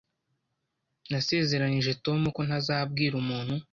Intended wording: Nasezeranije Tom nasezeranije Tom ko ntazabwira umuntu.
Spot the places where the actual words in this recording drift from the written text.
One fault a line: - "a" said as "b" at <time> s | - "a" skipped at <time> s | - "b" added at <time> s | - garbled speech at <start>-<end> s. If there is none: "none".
- "nasezeranije Tom" skipped at 2.2 s